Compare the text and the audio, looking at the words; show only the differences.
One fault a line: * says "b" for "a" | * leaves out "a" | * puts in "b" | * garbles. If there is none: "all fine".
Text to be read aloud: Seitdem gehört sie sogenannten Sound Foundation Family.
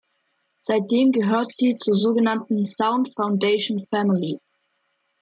* puts in "zur"